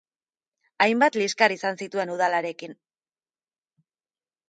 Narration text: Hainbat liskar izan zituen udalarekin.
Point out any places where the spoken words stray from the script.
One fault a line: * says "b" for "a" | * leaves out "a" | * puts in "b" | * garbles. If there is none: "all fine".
all fine